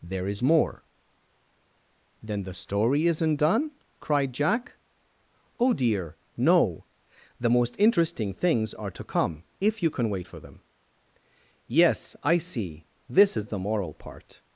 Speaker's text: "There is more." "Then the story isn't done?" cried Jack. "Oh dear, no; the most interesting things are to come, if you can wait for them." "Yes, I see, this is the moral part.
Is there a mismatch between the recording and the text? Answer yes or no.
no